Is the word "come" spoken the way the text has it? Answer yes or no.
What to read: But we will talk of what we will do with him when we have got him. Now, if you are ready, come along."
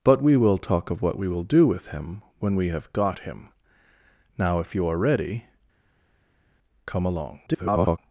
yes